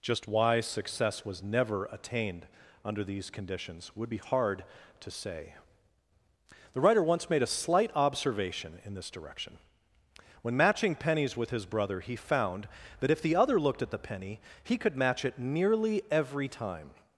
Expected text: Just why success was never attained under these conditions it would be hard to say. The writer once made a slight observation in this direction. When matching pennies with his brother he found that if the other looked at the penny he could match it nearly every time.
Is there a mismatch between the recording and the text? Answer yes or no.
yes